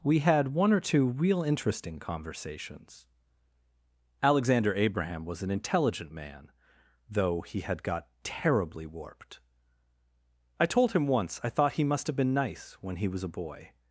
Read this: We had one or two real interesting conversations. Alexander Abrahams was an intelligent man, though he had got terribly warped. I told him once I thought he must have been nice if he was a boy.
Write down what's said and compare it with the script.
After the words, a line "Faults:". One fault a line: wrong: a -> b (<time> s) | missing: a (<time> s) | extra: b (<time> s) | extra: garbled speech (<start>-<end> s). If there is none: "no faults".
We had one or two real interesting conversations. Alexander Abraham was an intelligent man, though he had got terribly warped. I told him once I thought he must have been nice when he was a boy.
Faults:
wrong: Abrahams -> Abraham (4.7 s)
wrong: if -> when (12.8 s)